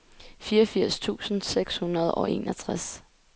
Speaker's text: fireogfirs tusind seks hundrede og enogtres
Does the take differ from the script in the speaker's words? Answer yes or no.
no